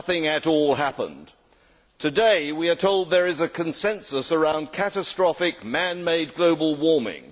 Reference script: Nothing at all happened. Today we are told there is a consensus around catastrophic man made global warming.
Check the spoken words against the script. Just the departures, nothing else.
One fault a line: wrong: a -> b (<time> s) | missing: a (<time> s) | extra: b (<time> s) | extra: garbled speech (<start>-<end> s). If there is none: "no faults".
no faults